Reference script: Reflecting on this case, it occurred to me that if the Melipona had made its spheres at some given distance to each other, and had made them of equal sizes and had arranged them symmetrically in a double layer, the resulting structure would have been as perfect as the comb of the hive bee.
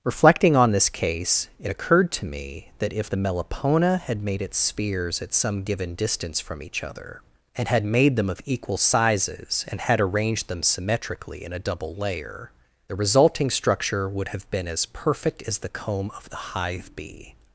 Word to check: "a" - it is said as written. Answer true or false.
true